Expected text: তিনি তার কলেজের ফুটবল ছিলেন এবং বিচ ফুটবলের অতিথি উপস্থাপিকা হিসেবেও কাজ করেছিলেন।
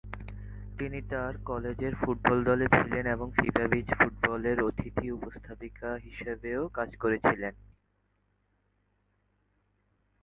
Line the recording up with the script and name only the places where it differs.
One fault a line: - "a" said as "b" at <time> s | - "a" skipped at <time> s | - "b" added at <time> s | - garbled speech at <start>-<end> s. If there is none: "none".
- "দলে" added at 2.4 s
- "ফিফা" added at 3.3 s